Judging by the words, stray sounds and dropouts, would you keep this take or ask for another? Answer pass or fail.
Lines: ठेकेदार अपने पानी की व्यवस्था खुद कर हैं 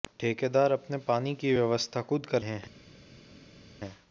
pass